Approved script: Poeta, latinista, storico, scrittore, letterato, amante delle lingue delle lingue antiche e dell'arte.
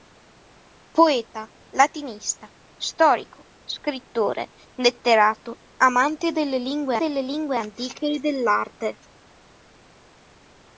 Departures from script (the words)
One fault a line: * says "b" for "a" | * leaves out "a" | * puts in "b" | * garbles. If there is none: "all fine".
all fine